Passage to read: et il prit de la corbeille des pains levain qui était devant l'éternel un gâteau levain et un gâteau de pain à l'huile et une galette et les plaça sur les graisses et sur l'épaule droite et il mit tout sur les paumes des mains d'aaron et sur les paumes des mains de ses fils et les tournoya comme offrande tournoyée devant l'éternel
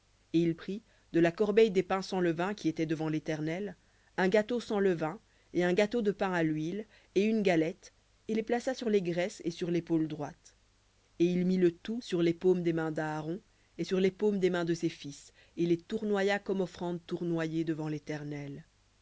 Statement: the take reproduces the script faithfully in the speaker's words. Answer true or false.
false